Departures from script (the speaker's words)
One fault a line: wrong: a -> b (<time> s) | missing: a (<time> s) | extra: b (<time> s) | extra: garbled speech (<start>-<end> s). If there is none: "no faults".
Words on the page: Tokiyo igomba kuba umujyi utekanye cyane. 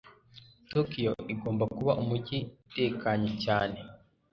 no faults